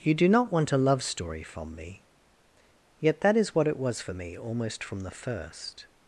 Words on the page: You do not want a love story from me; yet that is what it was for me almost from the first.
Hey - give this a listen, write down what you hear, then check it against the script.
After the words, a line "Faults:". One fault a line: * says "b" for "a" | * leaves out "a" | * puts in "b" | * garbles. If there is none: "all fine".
You do not want a love story from me; yet that is what it was for me almost from the first.
Faults:
all fine